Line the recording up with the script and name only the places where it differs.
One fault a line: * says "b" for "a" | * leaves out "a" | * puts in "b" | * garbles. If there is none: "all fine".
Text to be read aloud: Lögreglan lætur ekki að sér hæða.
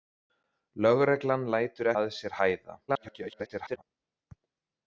* leaves out "ekki"
* garbles